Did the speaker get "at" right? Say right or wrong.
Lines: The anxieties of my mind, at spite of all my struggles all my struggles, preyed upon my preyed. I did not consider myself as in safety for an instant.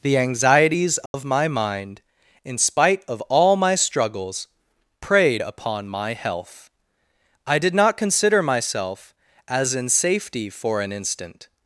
wrong